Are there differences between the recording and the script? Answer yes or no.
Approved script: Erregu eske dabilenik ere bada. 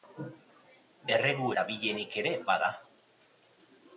yes